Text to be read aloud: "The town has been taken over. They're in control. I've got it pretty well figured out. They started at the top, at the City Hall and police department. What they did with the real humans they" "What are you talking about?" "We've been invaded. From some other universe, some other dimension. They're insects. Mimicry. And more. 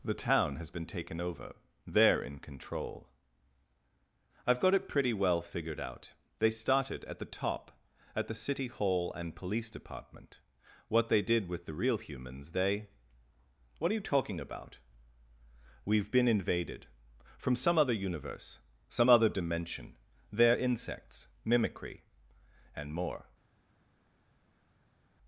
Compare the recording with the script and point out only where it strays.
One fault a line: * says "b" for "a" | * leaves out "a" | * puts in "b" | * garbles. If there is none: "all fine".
all fine